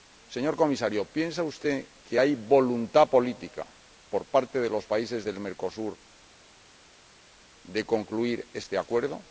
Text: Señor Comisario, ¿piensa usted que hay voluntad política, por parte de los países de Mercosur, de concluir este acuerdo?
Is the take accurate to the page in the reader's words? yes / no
yes